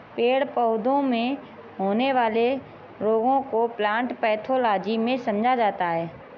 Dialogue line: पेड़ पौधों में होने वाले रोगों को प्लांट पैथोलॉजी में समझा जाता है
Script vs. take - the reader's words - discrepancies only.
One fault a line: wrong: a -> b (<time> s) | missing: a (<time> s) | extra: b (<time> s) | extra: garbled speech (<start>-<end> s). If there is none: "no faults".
no faults